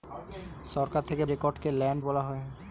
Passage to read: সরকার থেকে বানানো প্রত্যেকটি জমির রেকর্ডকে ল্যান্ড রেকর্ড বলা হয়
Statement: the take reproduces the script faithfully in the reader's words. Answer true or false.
false